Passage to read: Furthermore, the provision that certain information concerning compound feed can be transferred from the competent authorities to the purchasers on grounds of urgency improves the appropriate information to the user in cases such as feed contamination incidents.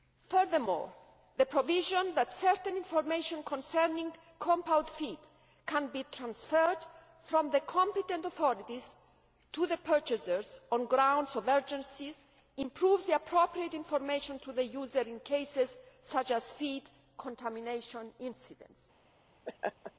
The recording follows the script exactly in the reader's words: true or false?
true